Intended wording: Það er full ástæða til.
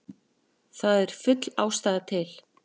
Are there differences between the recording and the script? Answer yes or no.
no